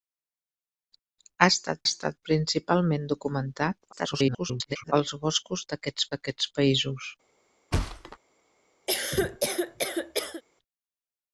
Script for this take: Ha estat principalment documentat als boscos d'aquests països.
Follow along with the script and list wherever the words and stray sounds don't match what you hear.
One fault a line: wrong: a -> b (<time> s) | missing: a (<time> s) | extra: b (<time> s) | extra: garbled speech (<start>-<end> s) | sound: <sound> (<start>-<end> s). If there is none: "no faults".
extra: estat (1.9 s)
extra: garbled speech (3.9-4.9 s)
extra: d'aquests (6.1 s)
sound: thud (7.7-8.2 s)
sound: cough (8.9-10.4 s)